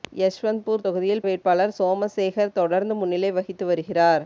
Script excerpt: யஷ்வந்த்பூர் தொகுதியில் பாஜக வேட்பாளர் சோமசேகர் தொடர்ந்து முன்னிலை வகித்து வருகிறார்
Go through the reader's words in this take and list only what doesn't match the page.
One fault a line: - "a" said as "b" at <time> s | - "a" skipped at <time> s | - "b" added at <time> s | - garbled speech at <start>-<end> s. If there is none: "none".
- "பாஜக" skipped at 1.2 s